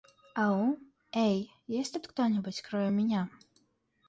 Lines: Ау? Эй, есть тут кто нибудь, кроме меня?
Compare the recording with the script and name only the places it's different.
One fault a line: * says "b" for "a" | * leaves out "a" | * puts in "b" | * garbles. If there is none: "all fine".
all fine